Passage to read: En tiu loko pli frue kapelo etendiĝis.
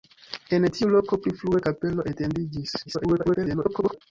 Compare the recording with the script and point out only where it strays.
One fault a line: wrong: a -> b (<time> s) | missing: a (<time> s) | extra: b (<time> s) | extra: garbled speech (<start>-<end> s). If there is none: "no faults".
extra: garbled speech (2.9-4.0 s)